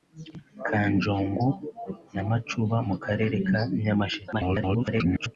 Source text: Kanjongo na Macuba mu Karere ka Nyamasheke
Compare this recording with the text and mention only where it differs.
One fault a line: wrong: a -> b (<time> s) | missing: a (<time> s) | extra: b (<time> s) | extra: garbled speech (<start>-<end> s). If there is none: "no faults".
extra: garbled speech (4.3-5.4 s)